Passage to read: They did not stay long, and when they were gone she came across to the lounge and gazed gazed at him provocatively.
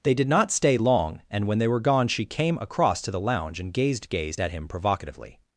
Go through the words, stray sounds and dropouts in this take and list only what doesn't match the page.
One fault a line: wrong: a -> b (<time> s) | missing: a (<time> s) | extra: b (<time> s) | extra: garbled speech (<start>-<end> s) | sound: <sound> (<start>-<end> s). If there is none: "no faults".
no faults